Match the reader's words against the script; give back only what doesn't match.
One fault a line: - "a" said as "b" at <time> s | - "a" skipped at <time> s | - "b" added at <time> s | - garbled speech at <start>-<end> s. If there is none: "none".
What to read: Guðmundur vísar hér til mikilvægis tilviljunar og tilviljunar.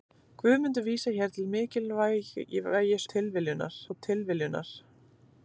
none